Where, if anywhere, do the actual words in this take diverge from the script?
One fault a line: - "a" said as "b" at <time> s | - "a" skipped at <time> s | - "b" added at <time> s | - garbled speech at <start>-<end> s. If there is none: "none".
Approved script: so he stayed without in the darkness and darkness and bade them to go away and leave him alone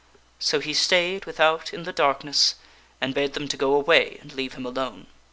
- "darkness and" skipped at 3.1 s